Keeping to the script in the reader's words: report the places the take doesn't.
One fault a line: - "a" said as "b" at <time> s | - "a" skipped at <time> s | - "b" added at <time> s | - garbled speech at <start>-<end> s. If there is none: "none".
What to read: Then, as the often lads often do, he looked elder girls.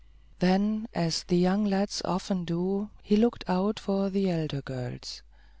- "often" said as "young" at 1.4 s
- "out for the" added at 3.5 s